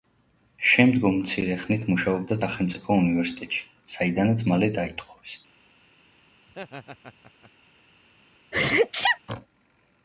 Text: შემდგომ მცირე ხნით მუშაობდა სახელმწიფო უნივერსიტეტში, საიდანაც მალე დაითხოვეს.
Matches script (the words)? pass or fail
pass